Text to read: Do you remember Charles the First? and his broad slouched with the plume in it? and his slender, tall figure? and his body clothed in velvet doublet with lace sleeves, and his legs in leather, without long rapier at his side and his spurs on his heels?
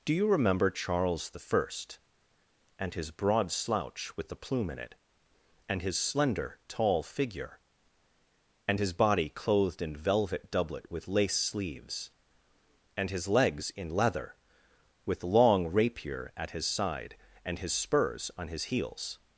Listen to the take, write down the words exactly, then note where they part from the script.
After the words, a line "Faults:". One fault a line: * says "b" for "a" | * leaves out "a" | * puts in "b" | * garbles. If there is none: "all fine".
Do you remember Charles the First? and his broad slouch with the plume in it? and his slender, tall figure? and his body clothed in velvet doublet with lace sleeves, and his legs in leather, with long rapier at his side and his spurs on his heels?
Faults:
* says "slouch" for "slouched"
* says "with" for "without"